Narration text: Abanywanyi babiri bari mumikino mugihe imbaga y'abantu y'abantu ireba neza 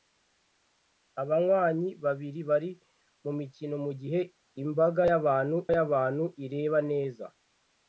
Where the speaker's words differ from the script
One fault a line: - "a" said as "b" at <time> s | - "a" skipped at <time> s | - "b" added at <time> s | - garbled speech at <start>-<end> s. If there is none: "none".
none